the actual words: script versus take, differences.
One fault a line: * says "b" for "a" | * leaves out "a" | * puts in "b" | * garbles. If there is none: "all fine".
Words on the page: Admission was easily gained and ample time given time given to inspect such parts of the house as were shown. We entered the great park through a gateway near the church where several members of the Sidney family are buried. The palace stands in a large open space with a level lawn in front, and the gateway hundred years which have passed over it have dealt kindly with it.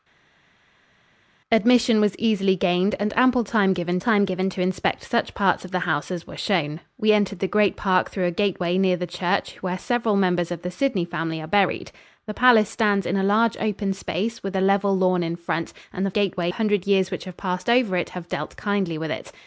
all fine